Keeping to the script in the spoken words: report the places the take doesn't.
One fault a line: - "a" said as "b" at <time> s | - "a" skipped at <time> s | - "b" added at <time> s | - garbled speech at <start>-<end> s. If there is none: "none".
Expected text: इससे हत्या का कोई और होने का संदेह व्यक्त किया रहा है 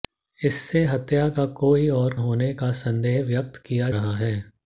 none